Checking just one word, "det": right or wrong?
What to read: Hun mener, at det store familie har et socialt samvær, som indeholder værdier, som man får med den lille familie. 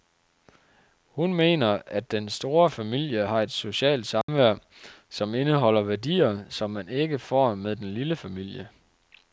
wrong